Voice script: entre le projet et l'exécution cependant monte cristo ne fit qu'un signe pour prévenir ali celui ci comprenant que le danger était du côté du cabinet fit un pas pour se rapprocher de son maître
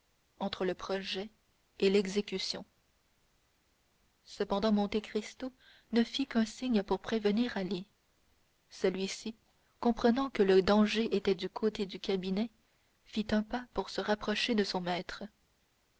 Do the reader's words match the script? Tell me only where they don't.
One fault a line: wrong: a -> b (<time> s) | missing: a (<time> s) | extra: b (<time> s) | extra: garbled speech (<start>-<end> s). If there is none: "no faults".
no faults